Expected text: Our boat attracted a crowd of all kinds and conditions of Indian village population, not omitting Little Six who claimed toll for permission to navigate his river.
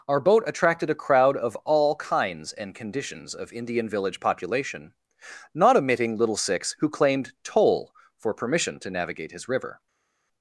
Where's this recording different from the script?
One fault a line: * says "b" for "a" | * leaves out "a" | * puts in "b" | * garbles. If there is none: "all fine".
all fine